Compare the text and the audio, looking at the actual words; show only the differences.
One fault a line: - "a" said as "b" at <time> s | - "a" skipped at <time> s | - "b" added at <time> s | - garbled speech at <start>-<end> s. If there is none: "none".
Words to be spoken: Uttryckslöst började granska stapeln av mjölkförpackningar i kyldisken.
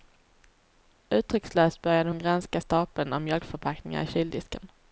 - "hon" added at 2.1 s